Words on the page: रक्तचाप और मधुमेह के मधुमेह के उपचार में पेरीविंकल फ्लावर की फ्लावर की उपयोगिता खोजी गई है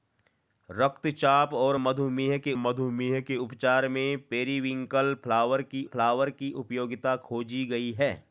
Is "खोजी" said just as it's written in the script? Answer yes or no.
yes